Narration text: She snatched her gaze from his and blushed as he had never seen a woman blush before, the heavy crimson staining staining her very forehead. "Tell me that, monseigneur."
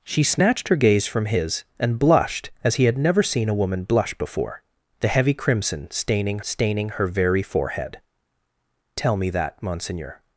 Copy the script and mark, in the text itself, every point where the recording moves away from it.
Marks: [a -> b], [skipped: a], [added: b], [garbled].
She snatched her gaze from his and blushed as he had never seen a woman blush before, the heavy crimson staining staining her very forehead. "Tell me that, monseigneur."